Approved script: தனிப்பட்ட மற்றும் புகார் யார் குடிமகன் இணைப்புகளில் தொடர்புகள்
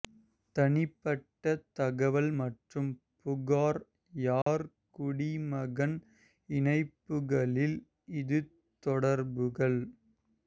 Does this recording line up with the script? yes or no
no